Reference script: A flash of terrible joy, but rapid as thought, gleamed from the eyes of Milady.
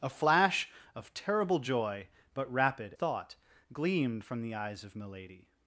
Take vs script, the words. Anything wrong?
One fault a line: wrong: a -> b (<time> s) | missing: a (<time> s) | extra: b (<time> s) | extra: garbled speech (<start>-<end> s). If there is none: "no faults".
missing: as (3.0 s)